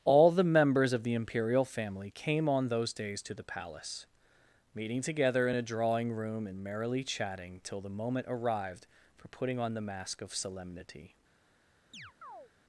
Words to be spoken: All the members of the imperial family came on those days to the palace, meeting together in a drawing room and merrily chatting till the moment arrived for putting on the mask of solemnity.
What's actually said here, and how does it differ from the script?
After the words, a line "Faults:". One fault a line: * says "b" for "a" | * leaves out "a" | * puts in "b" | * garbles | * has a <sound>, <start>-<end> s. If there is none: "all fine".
All the members of the imperial family came on those days to the palace, meeting together in a drawing room and merrily chatting till the moment arrived for putting on the mask of solemnity.
Faults:
* has a chirp, 11.9-12.5 s